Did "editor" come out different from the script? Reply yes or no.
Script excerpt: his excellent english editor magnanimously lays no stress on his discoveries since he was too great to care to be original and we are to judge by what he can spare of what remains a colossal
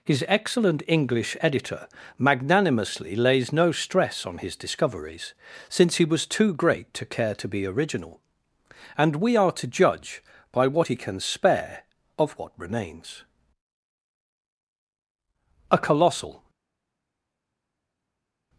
no